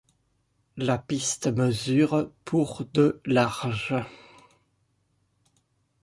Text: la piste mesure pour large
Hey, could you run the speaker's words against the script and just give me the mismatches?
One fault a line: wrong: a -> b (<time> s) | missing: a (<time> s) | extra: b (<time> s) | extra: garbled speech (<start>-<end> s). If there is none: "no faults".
extra: de (2.9 s)